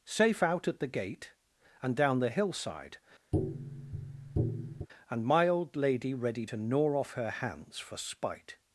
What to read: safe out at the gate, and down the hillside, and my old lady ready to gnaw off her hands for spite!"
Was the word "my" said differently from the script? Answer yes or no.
no